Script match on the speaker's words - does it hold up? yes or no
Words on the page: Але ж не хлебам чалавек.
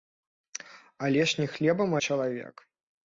yes